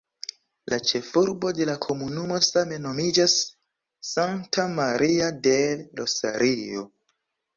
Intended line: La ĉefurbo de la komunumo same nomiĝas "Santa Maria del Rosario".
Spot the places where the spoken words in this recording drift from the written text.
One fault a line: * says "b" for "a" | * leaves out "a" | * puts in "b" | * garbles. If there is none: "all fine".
all fine